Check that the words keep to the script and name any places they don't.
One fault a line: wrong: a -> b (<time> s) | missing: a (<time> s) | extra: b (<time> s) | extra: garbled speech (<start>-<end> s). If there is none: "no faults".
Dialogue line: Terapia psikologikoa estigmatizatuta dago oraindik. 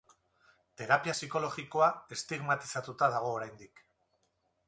no faults